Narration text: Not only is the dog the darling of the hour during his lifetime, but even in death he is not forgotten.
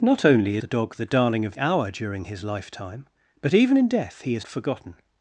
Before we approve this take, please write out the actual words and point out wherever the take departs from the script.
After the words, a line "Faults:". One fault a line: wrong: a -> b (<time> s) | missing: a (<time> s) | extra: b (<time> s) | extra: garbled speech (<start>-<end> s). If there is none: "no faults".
Not only the dog the darling of hour during his lifetime, but even in death he is forgotten.
Faults:
missing: is (0.6 s)
missing: the (1.6 s)
missing: not (4.5 s)